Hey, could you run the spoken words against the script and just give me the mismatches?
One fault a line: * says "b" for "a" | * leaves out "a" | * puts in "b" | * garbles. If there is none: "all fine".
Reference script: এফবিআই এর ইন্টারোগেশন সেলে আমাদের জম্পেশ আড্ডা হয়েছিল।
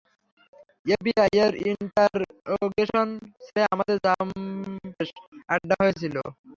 all fine